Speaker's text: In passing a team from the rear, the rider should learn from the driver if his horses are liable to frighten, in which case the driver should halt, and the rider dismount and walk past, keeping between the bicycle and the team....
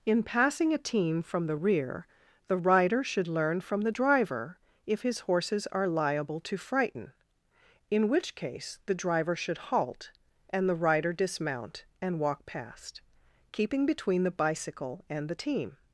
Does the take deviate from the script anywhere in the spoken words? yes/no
no